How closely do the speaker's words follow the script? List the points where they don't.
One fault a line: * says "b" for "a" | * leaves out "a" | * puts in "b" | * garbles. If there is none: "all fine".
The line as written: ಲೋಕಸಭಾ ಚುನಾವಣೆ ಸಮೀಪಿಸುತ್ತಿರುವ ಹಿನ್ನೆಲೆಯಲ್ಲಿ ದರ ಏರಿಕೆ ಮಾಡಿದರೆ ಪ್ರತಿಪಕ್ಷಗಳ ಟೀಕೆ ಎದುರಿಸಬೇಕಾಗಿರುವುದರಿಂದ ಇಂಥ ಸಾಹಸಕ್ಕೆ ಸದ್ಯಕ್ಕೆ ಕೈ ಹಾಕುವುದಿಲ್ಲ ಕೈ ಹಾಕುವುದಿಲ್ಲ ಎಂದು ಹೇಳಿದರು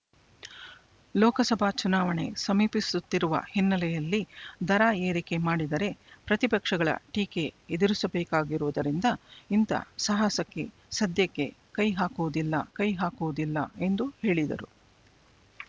all fine